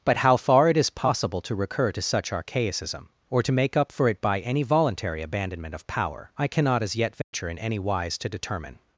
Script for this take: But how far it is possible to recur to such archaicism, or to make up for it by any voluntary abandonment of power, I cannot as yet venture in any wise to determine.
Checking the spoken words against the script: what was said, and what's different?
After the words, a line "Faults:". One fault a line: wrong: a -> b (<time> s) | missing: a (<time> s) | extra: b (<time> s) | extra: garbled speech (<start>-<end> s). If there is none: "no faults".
But how far it is possible to recur to such archaicism, or to make up for it by any voluntary abandonment of power, I cannot as yet venture in any wise to determine.
Faults:
no faults